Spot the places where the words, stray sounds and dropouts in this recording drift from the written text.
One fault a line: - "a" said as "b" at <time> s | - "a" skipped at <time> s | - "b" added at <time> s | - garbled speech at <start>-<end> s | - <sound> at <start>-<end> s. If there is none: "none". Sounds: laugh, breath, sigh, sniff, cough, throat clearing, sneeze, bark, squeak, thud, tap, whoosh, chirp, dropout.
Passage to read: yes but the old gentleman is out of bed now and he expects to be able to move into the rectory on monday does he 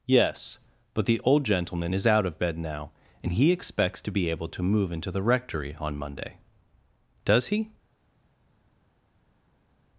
none